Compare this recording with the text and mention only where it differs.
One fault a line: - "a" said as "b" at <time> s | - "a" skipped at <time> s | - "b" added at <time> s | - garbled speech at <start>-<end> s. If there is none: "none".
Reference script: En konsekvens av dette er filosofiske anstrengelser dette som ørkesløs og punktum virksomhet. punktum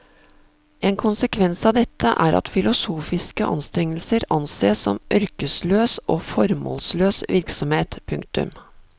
- "at" added at 2.4 s
- "dette" said as "ansees" at 4.4 s
- "punktum" said as "formålsløs" at 6.3 s